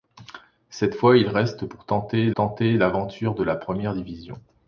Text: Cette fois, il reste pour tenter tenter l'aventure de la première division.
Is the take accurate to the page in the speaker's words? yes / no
yes